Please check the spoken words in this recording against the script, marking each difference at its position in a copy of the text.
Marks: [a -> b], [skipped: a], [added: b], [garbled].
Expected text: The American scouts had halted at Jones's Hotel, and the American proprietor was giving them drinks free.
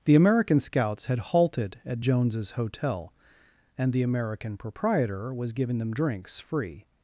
The American scouts had halted at Jones's Hotel, and the American proprietor was giving them drinks free.